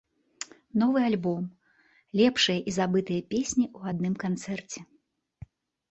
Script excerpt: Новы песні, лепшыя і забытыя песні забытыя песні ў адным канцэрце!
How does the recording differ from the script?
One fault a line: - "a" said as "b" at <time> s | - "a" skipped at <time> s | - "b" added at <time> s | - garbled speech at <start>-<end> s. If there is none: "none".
- "песні" said as "альбом" at 1.1 s
- "забытыя песні" skipped at 3.6 s